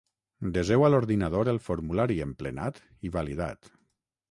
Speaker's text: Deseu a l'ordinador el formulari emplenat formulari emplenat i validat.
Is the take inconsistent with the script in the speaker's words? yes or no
yes